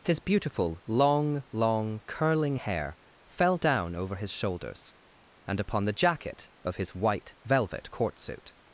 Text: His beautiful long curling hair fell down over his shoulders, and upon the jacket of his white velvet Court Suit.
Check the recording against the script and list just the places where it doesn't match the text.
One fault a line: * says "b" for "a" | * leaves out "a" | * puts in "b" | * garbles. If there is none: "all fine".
* puts in "long"